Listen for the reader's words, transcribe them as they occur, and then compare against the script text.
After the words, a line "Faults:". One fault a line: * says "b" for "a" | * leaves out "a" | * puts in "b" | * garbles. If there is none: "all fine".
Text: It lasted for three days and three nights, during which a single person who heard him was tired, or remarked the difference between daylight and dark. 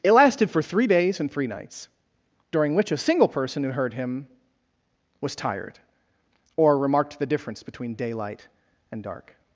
It lasted for three days and three nights, during which a single person who heard him was tired, or remarked the difference between daylight and dark.
Faults:
all fine